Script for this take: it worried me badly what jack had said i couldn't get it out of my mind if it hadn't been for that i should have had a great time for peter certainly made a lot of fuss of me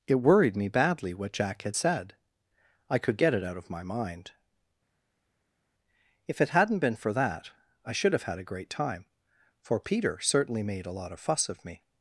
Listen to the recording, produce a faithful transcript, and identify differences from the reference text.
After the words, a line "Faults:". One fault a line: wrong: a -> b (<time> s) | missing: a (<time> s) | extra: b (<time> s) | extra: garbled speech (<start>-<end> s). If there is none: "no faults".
it worried me badly what jack had said i could get it out of my mind if it hadn't been for that i should have had a great time for peter certainly made a lot of fuss of me
Faults:
wrong: couldn't -> could (3.0 s)